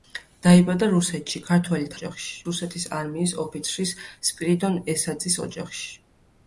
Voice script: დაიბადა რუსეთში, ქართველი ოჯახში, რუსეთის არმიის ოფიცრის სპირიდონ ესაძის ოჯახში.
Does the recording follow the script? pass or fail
pass